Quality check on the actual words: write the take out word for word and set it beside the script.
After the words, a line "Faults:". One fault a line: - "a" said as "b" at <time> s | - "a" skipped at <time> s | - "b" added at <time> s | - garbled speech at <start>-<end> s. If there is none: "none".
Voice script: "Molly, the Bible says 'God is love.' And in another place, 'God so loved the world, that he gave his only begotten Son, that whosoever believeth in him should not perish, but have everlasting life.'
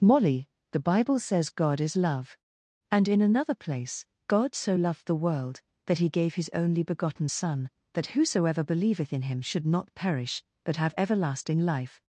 "Molly, the Bible says 'God is love.' And in another place, 'God so loved the world, that he gave his only begotten Son, that whosoever believeth in him should not perish, but have everlasting life.'
Faults:
none